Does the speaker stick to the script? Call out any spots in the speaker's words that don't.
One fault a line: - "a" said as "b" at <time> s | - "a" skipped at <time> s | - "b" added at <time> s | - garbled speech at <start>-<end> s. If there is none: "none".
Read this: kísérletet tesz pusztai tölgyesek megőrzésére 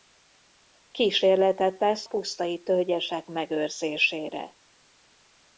none